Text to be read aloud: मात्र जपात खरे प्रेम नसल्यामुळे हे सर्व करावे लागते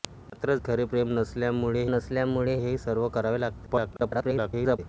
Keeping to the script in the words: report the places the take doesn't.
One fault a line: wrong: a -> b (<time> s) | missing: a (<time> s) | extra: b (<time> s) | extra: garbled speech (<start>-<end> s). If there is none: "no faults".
missing: जपात (0.6 s)
extra: नसल्यामुळे (1.9 s)
extra: garbled speech (3.7-4.8 s)